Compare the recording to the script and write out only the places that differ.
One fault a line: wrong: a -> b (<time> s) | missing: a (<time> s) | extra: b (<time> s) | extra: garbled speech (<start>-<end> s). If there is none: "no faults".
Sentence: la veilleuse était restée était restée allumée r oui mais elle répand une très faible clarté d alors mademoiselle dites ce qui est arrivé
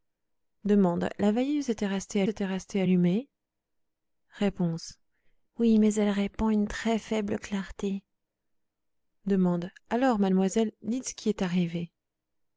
no faults